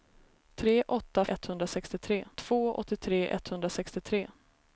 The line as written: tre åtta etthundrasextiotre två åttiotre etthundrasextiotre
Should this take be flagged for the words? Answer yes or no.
no